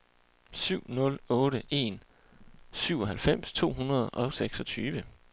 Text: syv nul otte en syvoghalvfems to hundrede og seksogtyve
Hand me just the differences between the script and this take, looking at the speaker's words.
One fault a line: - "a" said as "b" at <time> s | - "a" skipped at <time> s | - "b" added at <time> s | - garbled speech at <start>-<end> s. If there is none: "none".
none